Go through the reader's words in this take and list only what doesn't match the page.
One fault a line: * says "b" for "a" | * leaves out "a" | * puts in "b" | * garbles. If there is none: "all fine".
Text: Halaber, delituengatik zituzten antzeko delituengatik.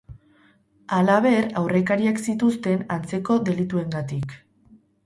* says "aurrekariak" for "delituengatik"